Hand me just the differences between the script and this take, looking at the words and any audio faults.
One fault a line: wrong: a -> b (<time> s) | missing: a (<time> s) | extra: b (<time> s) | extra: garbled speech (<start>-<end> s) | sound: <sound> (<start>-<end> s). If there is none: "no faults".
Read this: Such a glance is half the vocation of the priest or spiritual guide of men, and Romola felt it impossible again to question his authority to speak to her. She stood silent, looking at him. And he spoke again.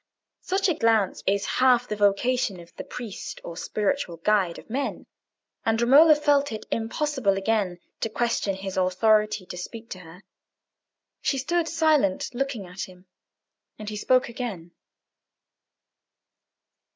no faults